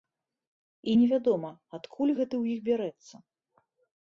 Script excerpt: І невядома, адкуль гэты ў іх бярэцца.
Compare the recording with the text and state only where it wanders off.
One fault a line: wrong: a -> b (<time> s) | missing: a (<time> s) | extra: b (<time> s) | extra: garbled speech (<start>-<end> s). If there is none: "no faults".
no faults